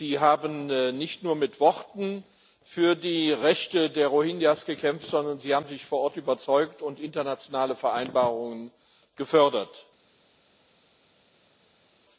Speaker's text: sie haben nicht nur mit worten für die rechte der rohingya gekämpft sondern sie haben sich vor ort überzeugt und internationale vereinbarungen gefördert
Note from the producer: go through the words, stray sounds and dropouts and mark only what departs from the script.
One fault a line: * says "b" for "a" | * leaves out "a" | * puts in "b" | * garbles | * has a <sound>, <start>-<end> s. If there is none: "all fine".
all fine